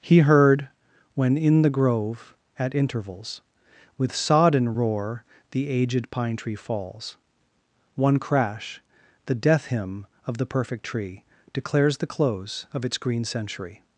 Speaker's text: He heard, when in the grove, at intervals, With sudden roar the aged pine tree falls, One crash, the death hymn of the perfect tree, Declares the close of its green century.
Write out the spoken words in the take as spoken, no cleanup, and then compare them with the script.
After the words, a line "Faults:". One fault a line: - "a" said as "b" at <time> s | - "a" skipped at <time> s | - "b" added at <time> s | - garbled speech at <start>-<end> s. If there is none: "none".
He heard, when in the grove, at intervals, With sodden roar the aged pine tree falls, One crash, the death hymn of the perfect tree, Declares the close of its green century.
Faults:
- "sudden" said as "sodden" at 4.2 s